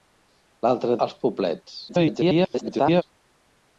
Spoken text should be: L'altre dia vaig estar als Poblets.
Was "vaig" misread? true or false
true